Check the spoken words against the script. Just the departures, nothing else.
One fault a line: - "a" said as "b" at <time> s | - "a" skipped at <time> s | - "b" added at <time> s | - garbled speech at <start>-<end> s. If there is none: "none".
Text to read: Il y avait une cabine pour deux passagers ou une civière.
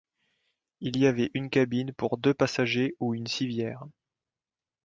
none